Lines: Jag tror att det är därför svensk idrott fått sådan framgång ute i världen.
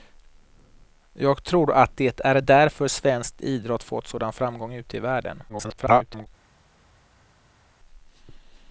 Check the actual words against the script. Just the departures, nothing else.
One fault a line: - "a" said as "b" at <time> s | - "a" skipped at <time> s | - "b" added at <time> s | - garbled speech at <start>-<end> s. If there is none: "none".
- garbled speech at 5.5-6.3 s